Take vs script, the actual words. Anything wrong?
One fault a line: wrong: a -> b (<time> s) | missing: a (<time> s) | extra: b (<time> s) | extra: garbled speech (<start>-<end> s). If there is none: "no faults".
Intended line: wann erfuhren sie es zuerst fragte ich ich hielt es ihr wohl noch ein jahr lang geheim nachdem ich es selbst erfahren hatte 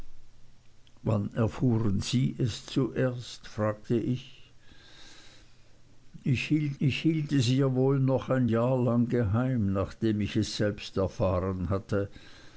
extra: ich hielt (6.8 s)